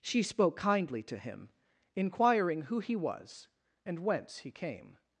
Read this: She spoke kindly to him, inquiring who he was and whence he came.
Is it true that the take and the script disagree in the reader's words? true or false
false